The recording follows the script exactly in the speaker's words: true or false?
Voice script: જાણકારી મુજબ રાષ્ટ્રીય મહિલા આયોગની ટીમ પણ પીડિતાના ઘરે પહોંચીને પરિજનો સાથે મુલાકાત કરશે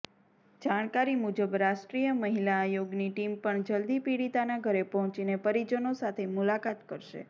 false